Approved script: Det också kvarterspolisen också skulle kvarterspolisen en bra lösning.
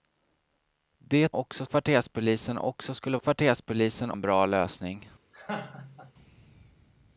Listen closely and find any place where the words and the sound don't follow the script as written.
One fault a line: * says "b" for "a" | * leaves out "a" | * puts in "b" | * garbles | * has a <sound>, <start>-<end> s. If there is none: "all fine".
* has a laugh, 5.3-6.1 s